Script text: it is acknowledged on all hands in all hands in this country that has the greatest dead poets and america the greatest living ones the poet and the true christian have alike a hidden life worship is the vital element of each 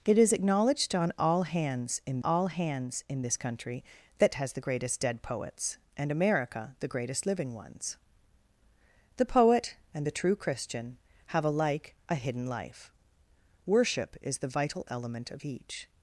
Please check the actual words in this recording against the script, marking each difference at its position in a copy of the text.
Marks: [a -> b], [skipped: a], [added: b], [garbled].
it is acknowledged on all hands in all hands in this country that has the greatest dead poets and america the greatest living ones the poet and the true christian have alike a hidden life worship is the vital element of each